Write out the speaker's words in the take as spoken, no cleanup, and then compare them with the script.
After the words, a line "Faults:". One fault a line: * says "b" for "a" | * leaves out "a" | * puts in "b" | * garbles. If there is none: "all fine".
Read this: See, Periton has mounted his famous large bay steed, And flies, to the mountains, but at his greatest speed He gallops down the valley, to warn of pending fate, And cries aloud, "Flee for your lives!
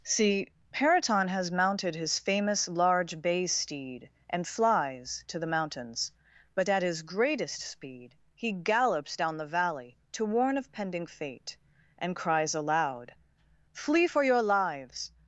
See, Periton has mounted his famous large bay steed, And flies, to the mountains, but at his greatest speed He gallops down the valley, to warn of pending fate, And cries aloud, "Flee for your lives!
Faults:
all fine